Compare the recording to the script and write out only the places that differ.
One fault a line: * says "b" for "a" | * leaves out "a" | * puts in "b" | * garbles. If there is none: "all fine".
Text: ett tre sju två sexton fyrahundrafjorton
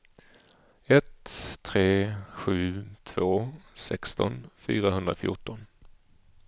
all fine